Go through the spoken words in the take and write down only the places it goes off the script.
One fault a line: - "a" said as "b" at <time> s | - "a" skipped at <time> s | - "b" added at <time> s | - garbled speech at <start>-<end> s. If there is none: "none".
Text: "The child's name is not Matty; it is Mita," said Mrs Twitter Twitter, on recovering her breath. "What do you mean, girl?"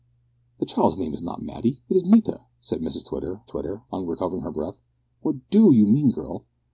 none